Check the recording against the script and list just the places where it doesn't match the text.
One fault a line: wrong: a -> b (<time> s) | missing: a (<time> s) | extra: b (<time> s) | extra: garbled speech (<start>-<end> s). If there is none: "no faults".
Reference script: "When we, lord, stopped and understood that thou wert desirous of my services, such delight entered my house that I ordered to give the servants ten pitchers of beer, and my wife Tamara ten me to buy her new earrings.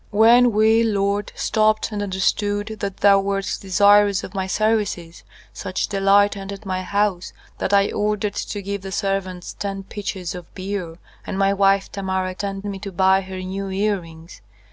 no faults